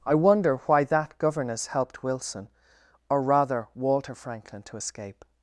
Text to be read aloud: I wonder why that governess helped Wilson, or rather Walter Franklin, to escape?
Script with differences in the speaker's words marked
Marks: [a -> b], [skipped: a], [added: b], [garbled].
I wonder why that governess helped Wilson, or rather Walter Franklin, to escape?